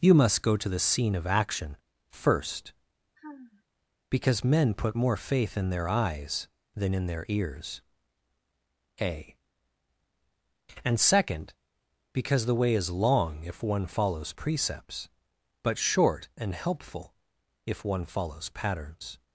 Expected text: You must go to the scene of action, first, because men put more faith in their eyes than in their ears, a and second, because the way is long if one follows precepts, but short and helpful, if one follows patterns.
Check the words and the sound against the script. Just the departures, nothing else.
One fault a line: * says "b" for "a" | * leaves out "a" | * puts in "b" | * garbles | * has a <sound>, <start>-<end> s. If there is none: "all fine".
* has a sigh, 3.2-3.6 s